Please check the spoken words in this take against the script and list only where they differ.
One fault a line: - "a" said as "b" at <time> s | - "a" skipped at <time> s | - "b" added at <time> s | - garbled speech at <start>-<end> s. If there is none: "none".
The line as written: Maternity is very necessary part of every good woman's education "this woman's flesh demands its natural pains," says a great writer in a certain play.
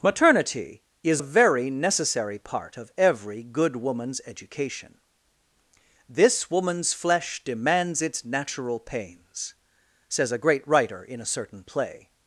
none